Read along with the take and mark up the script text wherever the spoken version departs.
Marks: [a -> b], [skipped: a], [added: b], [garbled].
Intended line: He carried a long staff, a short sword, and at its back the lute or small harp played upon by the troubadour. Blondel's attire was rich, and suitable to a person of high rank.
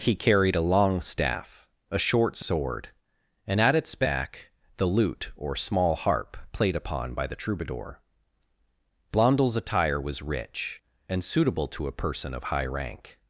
He carried a long staff, a short sword, and at its back the lute or small harp played upon by the troubadour. Blondel's attire was rich, and suitable to a person of high rank.